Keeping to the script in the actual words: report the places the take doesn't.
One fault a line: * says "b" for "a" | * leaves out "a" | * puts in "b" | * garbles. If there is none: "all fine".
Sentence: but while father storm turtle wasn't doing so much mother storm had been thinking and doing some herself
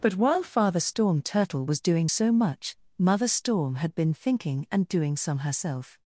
* says "was" for "wasn't"